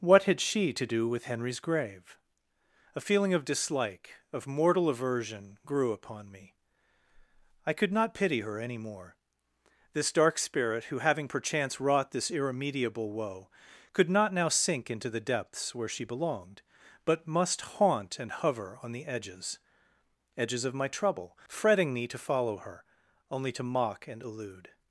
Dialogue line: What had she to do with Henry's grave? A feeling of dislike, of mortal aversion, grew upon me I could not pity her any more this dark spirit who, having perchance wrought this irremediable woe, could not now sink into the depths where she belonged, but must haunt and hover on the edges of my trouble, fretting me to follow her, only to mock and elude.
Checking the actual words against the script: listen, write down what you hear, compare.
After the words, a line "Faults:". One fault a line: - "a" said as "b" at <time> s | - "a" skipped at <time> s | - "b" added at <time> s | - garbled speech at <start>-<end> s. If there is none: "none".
What had she to do with Henry's grave? A feeling of dislike, of mortal aversion, grew upon me I could not pity her any more this dark spirit who, having perchance wrought this irremediable woe, could not now sink into the depths where she belonged, but must haunt and hover on the edges edges of my trouble, fretting me to follow her, only to mock and elude.
Faults:
- "edges" added at 20.4 s